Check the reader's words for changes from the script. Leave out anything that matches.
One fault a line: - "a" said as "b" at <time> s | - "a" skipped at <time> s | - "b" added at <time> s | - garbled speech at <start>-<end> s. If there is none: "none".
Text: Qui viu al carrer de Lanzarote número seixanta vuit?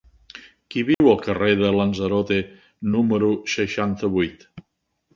none